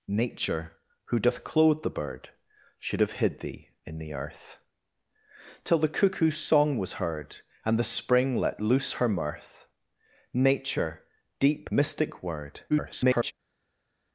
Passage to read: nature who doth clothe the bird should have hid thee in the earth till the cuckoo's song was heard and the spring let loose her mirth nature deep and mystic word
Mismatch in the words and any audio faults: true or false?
true